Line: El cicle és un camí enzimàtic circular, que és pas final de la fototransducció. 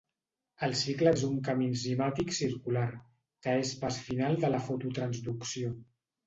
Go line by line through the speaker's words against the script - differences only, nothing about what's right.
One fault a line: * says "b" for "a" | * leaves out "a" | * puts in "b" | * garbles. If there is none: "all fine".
all fine